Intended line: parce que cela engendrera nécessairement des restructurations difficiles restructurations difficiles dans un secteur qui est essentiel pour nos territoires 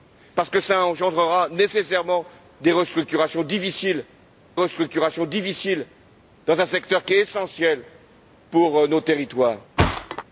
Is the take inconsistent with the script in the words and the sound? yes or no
yes